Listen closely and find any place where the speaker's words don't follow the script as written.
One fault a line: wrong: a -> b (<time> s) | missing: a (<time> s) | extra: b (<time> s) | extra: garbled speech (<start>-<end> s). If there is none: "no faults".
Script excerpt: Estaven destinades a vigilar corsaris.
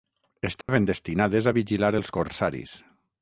extra: els (2.0 s)